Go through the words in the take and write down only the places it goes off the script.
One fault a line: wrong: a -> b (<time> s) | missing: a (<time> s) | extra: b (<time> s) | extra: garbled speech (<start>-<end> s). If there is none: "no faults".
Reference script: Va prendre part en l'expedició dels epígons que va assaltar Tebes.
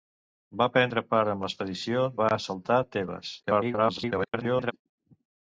missing: dels epígons que (2.1 s)
extra: garbled speech (3.4-4.7 s)